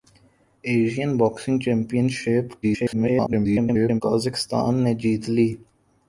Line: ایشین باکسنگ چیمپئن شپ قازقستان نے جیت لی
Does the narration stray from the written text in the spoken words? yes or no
yes